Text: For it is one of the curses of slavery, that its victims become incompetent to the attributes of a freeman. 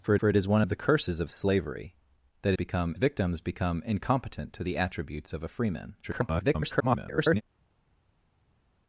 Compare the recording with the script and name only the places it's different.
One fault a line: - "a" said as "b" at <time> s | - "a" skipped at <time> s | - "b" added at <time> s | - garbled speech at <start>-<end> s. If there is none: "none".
- "for" added at 0.2 s
- "its" said as "become" at 2.5 s
- garbled speech at 6.0-7.4 s